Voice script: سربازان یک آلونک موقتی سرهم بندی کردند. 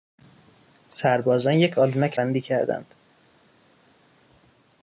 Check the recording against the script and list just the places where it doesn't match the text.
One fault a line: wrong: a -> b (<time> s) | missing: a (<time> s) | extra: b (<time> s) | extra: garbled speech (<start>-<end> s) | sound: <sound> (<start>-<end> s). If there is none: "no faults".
missing: موقتی سرهم (2.2 s)